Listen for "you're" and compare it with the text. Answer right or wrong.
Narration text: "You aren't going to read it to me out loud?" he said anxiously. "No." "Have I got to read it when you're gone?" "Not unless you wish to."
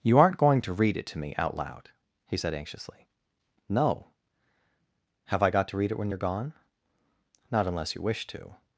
right